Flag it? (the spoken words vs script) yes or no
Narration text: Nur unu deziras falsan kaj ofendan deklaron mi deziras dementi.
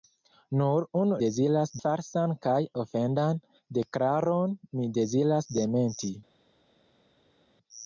no